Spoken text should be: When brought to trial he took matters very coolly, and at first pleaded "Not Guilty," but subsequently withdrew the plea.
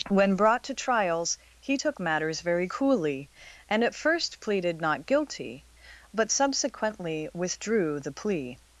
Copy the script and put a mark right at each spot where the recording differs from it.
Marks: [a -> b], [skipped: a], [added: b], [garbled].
When brought to [trial -> trials] he took matters very coolly, and at first pleaded "Not Guilty," but subsequently withdrew the plea.